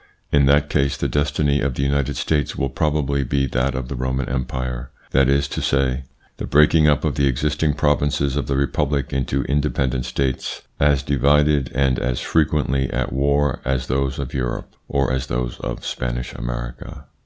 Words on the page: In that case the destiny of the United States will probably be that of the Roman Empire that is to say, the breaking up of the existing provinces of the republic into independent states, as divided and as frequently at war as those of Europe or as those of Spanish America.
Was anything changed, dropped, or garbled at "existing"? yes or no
no